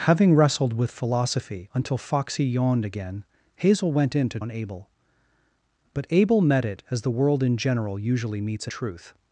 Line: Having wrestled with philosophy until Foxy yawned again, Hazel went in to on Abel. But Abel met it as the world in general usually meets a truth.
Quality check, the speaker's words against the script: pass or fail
pass